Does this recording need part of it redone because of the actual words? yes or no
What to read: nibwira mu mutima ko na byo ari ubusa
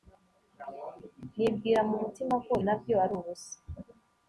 no